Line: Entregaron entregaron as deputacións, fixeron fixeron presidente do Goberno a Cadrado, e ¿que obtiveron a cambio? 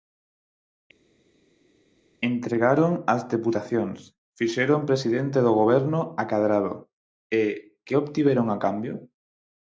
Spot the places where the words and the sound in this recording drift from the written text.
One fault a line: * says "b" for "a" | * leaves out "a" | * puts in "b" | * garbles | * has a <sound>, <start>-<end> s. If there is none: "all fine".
* leaves out "entregaron"
* leaves out "fixeron"